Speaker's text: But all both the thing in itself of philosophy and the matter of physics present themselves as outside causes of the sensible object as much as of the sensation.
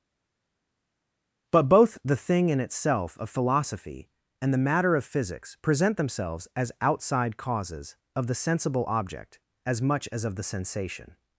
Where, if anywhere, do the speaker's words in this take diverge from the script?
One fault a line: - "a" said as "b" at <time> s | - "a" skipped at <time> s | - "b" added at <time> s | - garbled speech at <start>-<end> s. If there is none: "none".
- "all" skipped at 1.7 s